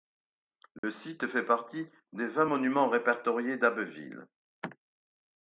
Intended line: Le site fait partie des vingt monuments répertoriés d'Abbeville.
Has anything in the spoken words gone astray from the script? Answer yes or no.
no